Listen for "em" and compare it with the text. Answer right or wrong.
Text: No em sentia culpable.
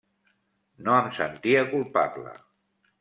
right